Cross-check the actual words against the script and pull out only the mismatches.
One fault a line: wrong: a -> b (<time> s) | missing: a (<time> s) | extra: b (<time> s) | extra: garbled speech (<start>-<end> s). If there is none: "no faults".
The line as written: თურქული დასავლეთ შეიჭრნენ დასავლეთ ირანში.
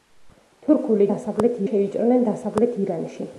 no faults